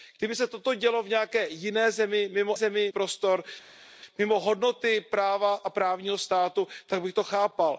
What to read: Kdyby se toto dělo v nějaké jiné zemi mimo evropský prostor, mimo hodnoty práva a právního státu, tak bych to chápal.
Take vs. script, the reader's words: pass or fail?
fail